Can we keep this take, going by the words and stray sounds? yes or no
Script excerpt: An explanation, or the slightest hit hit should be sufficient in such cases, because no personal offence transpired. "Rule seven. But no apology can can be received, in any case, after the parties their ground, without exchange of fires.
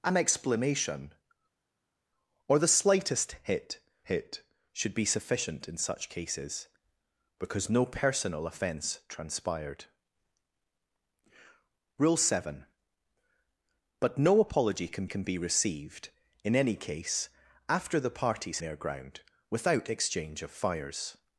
yes